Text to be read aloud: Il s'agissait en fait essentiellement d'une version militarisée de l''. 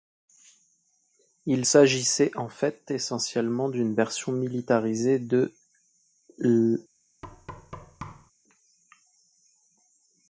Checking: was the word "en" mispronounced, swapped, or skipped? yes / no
no